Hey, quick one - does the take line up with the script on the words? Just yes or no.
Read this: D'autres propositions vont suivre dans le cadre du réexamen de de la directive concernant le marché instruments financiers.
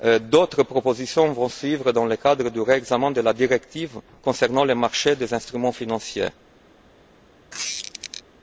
no